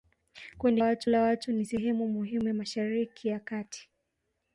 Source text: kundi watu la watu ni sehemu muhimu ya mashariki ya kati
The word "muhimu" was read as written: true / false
true